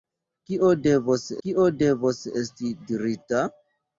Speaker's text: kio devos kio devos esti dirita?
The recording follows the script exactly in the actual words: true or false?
true